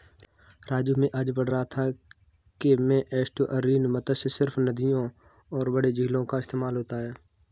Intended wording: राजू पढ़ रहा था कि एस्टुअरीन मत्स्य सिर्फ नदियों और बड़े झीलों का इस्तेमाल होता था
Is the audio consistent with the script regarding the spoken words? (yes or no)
no